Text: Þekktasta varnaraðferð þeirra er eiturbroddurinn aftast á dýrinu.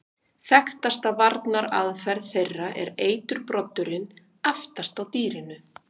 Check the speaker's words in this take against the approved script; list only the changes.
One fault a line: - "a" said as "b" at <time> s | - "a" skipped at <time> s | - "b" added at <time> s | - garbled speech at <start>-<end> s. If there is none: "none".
none